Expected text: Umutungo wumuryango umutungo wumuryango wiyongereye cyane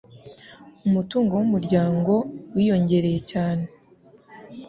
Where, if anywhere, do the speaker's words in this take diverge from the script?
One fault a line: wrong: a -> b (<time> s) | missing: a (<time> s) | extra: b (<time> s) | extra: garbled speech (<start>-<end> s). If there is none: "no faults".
missing: umutungo wumuryango (2.1 s)